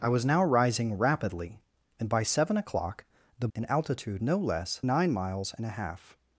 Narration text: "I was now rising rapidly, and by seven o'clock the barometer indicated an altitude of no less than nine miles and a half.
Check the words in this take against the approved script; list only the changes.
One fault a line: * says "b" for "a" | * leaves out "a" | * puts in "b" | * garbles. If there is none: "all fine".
* leaves out "barometer indicated"
* leaves out "of"
* leaves out "than"